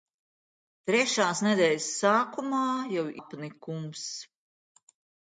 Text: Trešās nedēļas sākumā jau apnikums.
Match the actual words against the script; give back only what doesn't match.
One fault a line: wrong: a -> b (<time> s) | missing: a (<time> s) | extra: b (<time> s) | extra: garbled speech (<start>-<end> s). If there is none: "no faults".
no faults